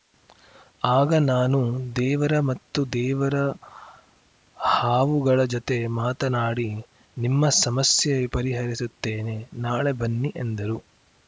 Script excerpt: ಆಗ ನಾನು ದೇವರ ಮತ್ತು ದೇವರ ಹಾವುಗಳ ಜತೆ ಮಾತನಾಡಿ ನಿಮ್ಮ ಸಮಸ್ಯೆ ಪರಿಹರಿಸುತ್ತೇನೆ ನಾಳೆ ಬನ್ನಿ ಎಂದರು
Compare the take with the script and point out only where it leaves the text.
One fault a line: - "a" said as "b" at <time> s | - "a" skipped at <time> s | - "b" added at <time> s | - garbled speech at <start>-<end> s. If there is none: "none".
none